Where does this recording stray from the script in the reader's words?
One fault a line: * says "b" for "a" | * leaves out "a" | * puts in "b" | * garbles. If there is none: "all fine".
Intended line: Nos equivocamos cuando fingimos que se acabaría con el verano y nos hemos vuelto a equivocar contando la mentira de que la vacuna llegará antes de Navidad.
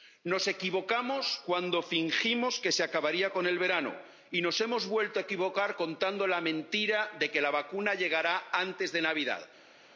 all fine